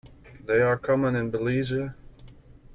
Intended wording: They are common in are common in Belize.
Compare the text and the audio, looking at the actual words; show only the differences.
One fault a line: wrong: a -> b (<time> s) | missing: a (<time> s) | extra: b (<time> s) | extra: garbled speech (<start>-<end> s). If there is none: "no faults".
missing: are common in (1.3 s)